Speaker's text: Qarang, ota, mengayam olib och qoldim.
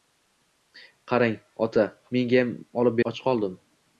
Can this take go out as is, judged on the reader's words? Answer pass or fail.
pass